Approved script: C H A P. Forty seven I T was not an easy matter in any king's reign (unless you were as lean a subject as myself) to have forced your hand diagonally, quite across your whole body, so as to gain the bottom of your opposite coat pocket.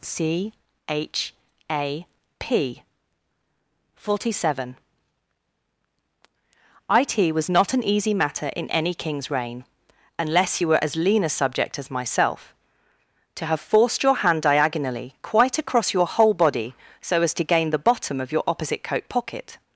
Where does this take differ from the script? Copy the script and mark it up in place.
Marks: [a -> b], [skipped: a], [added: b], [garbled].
C H A P. Forty seven I T was not an easy matter in any king's reign (unless you were as lean a subject as myself) to have forced your hand diagonally, quite across your whole body, so as to gain the bottom of your opposite coat pocket.